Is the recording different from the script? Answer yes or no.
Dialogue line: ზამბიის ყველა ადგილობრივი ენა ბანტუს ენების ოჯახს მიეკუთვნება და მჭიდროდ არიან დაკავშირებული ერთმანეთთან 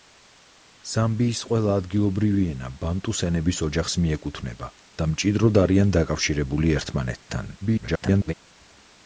yes